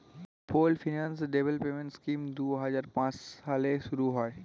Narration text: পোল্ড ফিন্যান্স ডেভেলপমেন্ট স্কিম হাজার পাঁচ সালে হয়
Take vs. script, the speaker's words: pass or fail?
fail